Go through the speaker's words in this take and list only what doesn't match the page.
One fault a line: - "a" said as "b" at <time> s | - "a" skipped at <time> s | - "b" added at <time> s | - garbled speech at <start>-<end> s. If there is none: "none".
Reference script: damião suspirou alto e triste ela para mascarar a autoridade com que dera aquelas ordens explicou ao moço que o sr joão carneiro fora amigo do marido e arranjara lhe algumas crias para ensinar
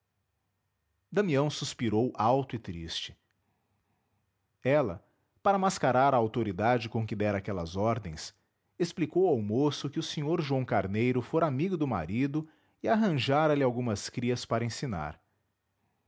none